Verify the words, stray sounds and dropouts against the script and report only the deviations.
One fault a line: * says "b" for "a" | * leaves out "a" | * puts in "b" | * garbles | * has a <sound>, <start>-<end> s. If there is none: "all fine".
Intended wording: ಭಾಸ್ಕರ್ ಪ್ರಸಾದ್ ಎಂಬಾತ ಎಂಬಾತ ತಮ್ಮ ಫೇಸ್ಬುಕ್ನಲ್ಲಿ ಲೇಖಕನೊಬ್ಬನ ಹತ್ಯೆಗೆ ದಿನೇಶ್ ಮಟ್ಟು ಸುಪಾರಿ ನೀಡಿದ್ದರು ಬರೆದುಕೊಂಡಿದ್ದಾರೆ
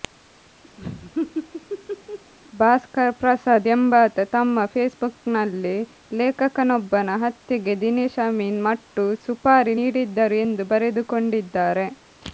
* has a laugh, 0.8-2.3 s
* leaves out "ಎಂಬಾತ"
* puts in "ಅಮೀನ್"
* puts in "ಎಂದು"